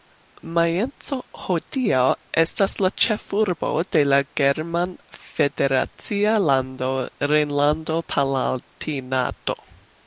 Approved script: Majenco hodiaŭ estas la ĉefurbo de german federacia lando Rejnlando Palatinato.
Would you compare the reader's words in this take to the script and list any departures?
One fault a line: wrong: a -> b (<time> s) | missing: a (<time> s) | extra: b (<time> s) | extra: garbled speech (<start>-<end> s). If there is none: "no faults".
extra: la (4.1 s)